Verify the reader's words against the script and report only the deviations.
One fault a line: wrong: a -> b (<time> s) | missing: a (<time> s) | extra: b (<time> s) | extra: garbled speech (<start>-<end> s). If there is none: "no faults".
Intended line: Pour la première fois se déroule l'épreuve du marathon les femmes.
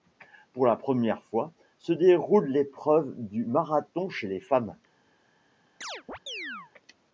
extra: chez (4.1 s)